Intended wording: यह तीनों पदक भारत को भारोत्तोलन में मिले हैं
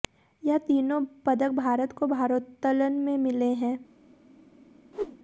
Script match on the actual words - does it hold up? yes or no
yes